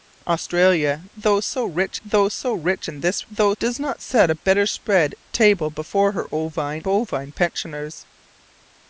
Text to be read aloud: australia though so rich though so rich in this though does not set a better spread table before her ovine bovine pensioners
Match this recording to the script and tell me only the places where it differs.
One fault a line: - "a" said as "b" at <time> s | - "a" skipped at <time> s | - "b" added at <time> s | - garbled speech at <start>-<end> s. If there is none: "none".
none